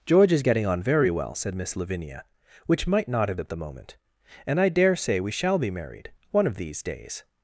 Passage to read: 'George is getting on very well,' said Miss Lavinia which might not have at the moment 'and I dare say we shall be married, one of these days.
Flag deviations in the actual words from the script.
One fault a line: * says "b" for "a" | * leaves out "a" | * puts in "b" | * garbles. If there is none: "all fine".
all fine